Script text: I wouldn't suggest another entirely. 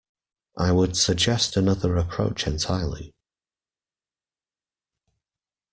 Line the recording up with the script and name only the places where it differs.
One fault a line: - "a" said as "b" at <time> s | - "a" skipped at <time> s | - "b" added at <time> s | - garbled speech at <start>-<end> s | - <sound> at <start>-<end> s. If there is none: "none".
- "wouldn't" said as "would" at 0.7 s
- "approach" added at 1.9 s